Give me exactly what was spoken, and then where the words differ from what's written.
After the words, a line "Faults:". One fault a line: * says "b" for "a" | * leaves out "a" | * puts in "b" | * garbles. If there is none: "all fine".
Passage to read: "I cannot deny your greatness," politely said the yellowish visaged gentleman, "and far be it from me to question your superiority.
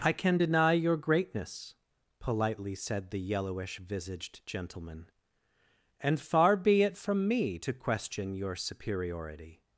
"I can deny your greatness," politely said the yellowish visaged gentleman, "and far be it from me to question your superiority.
Faults:
* says "can" for "cannot"